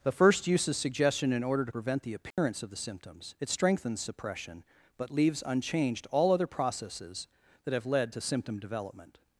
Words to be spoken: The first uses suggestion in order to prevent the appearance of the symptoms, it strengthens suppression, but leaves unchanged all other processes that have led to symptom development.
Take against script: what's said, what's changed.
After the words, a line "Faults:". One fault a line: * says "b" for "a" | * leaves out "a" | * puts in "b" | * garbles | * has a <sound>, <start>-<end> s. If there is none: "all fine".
The first uses suggestion in order to prevent the appearance of the symptoms, it strengthens suppression, but leaves unchanged all other processes that have led to symptom development.
Faults:
* has a dropout, 2.3-2.4 s